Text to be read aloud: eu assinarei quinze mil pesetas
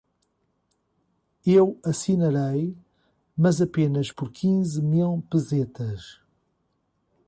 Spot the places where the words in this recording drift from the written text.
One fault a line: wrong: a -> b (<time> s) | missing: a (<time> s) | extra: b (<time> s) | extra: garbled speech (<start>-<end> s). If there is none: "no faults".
extra: mas apenas por (3.4 s)